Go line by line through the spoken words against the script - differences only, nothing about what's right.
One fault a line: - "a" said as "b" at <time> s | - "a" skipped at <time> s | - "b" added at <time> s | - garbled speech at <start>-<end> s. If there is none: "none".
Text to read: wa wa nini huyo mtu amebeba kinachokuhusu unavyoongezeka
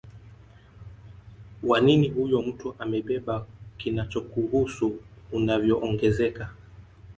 - "wa" skipped at 1.8 s